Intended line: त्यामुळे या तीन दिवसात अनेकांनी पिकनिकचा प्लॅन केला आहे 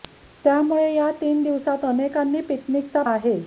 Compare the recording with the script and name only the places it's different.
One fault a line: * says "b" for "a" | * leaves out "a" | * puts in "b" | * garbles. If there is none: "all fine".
* leaves out "प्लॅन केला"